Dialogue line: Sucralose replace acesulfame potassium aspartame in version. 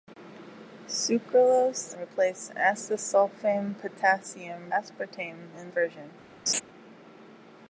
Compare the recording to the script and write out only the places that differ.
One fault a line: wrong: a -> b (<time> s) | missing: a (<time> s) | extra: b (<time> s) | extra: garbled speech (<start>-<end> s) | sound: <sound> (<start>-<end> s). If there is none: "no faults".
sound: laugh (6.5-6.6 s)